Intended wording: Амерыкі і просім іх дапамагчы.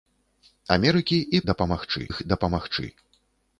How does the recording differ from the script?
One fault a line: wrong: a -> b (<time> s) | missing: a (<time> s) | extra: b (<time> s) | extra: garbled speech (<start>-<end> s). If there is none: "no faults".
wrong: просім -> дапамагчы (1.5 s)